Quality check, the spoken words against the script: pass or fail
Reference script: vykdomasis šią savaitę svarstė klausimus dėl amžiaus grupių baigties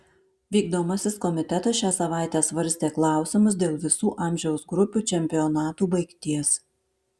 fail